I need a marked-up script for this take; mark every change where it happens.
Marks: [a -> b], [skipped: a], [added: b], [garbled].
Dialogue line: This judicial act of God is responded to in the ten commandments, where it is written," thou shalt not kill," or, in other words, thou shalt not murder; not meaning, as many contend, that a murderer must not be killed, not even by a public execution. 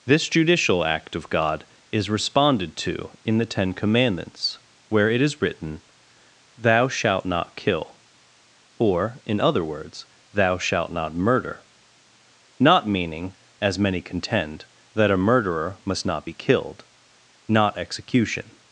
This judicial act of God is responded to in the ten commandments, where it is written," thou shalt not kill," or, in other words, thou shalt not murder; not meaning, as many contend, that a murderer must not be killed, not [skipped: even by a public] execution.